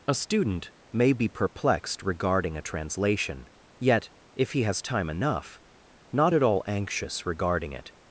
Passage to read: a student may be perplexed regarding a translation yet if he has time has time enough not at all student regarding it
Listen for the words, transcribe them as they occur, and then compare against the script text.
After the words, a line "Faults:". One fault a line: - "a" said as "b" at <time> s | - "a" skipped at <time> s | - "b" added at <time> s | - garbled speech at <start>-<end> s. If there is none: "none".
a student may be perplexed regarding a translation yet if he has time enough not at all anxious regarding it
Faults:
- "has time" skipped at 5.1 s
- "student" said as "anxious" at 6.7 s